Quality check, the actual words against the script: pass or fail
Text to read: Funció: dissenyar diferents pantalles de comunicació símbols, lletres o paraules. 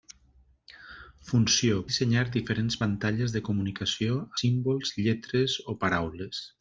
pass